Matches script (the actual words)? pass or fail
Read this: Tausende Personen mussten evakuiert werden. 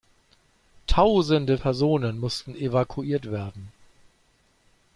pass